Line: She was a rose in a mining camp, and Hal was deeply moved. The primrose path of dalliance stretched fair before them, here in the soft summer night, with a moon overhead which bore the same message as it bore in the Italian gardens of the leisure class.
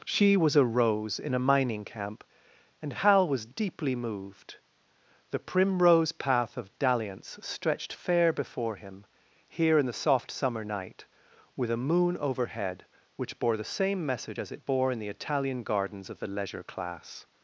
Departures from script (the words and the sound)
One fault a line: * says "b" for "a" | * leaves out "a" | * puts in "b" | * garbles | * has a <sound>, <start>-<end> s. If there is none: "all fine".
* says "him" for "them"